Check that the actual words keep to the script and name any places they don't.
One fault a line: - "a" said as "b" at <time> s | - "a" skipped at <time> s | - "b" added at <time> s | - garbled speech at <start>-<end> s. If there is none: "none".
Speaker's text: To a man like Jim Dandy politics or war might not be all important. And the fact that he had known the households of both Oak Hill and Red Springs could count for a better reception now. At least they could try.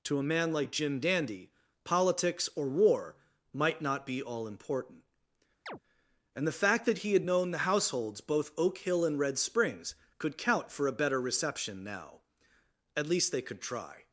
- "of" skipped at 8.2 s